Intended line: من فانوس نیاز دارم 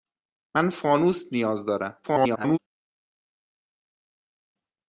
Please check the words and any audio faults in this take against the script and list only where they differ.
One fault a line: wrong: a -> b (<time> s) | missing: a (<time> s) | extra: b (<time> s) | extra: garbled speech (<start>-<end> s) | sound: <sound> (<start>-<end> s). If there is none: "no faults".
extra: garbled speech (2.0-2.6 s)